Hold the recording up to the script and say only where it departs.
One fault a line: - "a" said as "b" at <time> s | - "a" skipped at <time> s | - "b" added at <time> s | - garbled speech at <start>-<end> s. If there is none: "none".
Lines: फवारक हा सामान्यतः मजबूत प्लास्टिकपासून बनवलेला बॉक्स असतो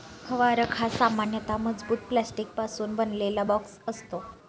none